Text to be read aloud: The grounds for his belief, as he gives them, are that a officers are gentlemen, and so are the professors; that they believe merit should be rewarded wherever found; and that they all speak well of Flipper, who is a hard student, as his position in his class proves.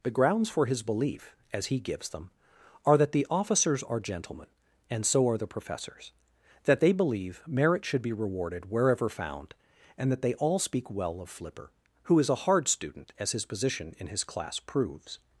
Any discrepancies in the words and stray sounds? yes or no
yes